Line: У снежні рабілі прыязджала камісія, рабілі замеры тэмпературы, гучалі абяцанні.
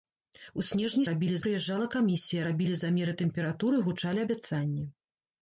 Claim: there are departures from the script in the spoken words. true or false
false